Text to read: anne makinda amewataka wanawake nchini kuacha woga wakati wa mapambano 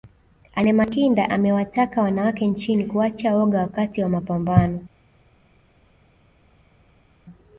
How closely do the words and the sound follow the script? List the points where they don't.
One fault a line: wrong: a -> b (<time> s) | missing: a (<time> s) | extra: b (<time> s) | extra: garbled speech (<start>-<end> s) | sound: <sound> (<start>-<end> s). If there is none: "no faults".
no faults